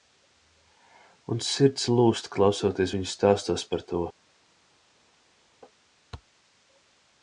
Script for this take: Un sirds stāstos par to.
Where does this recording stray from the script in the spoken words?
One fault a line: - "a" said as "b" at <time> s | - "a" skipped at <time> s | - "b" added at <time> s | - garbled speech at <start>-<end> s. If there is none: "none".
- "lūzt klausoties viņu" added at 1.9 s